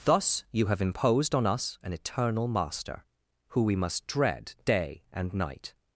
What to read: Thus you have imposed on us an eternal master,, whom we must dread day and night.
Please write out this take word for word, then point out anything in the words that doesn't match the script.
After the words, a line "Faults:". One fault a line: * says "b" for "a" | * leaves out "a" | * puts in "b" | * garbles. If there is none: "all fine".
Thus you have imposed on us an eternal master,, who we must dread day and night.
Faults:
* says "who" for "whom"